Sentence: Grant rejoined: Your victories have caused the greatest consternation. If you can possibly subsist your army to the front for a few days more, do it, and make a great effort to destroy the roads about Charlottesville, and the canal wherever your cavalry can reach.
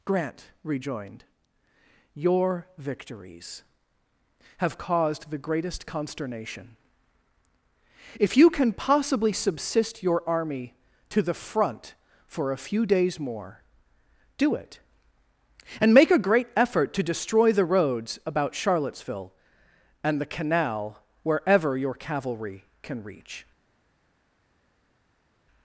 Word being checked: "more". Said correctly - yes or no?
yes